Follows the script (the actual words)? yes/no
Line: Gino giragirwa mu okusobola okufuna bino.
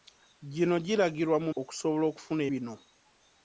yes